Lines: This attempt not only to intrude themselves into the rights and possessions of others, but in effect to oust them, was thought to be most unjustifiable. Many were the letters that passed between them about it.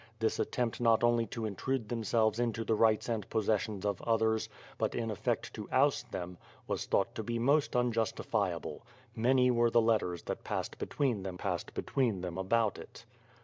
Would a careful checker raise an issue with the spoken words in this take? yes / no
yes